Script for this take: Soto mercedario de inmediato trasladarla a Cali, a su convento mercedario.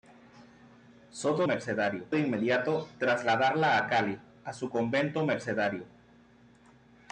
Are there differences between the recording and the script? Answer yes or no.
no